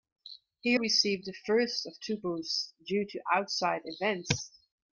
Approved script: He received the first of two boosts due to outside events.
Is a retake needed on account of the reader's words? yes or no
no